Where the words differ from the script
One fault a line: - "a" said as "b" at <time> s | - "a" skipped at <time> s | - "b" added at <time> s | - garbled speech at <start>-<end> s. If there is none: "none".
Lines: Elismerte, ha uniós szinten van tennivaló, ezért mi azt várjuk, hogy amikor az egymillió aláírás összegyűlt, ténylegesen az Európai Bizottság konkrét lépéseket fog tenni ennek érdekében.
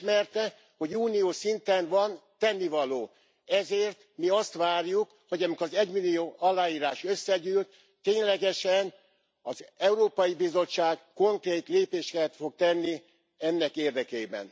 - "ha" said as "hogy" at 0.8 s